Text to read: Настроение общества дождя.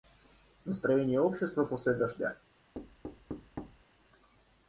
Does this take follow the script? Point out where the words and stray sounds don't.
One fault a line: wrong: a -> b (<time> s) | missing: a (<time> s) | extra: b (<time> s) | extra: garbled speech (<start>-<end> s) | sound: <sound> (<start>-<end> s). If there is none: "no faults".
extra: после (1.6 s)
sound: thud (2.7-3.8 s)